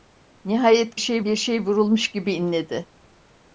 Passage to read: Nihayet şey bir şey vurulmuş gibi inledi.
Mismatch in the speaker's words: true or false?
false